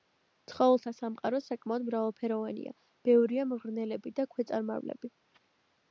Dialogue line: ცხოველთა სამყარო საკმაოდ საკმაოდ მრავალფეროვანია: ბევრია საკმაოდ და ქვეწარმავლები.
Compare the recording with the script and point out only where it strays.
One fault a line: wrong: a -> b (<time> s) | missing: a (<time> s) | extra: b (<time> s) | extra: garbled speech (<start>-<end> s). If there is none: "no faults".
missing: საკმაოდ (1.9 s)
wrong: საკმაოდ -> მღრღნელები (3.5 s)